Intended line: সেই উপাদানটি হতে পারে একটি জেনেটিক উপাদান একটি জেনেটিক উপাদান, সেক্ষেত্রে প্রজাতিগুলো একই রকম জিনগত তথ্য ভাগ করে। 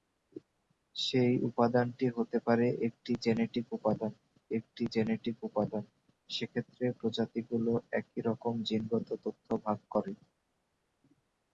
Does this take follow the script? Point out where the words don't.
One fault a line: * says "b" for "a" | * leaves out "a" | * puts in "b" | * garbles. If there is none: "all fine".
all fine